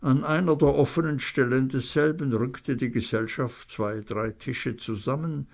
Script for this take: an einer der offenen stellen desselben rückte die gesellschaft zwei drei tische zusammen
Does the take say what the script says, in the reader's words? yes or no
yes